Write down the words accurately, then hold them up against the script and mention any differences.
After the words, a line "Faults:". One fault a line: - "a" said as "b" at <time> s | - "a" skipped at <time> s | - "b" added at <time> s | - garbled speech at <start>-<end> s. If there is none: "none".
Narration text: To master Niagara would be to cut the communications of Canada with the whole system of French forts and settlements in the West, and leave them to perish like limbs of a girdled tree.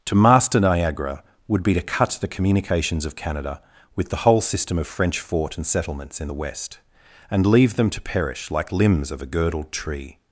To master Niagara would be to cut the communications of Canada with the whole system of French fort and settlements in the West, and leave them to perish like limbs of a girdled tree.
Faults:
- "forts" said as "fort" at 5.2 s